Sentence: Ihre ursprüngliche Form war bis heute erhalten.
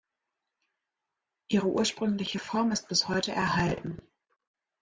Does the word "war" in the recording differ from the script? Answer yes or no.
yes